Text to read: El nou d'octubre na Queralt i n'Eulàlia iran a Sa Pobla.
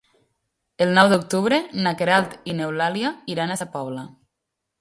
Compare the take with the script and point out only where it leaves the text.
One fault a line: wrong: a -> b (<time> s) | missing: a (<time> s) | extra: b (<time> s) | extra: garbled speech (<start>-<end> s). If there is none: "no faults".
no faults